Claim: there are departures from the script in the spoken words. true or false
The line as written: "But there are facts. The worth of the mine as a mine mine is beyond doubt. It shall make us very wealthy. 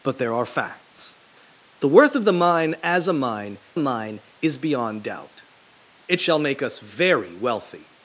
false